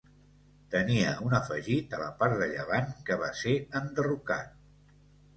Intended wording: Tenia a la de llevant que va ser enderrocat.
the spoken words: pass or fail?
fail